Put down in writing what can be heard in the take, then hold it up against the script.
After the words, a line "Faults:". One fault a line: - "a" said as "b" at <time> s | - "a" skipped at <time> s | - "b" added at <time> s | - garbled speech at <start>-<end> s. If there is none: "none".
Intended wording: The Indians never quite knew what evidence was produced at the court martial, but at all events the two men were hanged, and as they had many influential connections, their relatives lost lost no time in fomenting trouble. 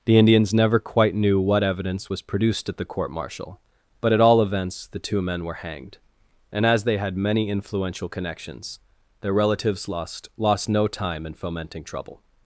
The Indians never quite knew what evidence was produced at the court martial, but at all events the two men were hanged, and as they had many influential connections, their relatives lost lost no time in fomenting trouble.
Faults:
none